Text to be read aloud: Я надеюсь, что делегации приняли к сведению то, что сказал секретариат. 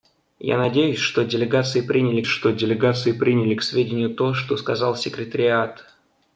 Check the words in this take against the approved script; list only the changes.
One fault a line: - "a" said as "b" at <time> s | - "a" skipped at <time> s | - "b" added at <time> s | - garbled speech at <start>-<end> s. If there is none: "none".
- "что делегации приняли" added at 2.2 s